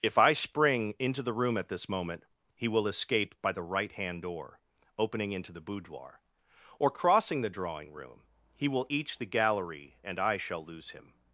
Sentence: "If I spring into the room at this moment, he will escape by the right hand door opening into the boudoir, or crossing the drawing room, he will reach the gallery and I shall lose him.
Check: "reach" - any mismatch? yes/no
yes